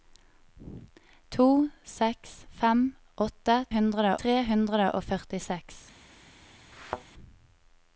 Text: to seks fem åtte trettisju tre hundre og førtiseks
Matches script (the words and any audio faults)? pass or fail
fail